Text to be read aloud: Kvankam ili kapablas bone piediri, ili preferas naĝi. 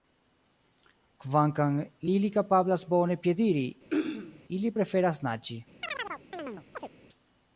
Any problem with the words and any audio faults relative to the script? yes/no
yes